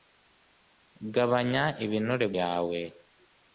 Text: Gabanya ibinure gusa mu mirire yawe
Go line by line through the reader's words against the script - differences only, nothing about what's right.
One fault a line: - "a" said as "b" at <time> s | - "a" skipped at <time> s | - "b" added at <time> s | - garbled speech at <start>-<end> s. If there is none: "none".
- "gusa mu mirire" skipped at 2.3 s